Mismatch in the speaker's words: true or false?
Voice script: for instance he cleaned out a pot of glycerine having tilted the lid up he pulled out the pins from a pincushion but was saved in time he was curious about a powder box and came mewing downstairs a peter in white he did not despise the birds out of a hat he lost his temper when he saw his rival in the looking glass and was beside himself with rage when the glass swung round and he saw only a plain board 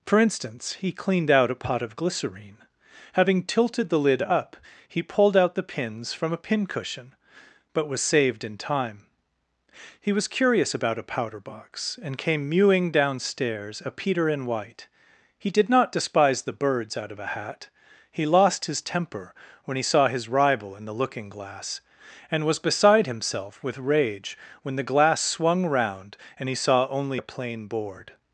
false